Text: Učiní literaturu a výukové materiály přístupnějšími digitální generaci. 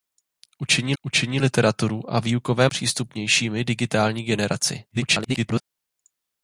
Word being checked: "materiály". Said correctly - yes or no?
no